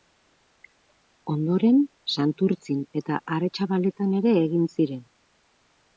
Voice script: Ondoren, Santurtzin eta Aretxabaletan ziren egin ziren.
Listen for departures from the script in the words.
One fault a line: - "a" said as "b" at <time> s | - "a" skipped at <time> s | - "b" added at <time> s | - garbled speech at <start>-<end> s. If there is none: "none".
- "ziren" said as "ere" at 4.2 s